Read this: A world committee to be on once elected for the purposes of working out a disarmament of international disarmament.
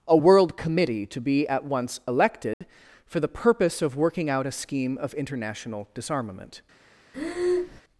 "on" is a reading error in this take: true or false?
true